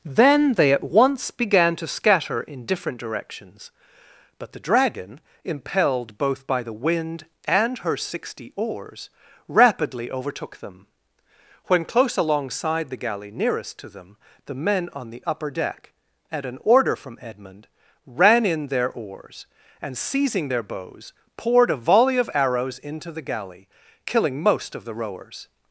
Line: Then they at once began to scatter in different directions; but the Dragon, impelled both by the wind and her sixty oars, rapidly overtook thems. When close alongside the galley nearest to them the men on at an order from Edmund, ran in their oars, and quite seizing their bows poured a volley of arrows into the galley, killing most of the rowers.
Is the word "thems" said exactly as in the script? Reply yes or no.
no